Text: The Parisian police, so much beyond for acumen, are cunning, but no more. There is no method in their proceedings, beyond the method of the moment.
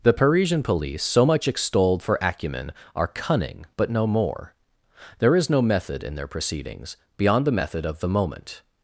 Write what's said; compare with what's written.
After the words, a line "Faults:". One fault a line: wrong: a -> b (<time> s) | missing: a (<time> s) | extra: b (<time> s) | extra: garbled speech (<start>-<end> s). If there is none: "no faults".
The Parisian police, so much extolled for acumen, are cunning, but no more. There is no method in their proceedings, beyond the method of the moment.
Faults:
wrong: beyond -> extolled (1.5 s)